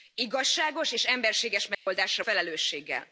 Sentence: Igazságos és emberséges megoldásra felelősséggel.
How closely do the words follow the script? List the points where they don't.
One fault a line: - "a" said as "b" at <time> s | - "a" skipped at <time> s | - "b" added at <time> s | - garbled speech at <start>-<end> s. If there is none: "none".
none